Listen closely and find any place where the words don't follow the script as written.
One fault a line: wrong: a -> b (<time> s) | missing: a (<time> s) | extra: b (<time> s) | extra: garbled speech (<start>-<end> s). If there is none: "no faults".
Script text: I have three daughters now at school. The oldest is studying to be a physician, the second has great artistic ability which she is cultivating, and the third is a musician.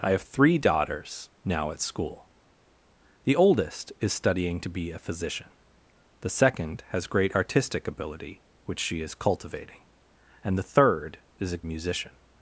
no faults